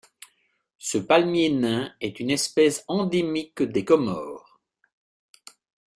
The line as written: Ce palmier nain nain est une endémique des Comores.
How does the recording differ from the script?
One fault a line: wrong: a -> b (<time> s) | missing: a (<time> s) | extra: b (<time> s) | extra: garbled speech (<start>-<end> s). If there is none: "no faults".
missing: nain (1.9 s)
extra: espèce (2.3 s)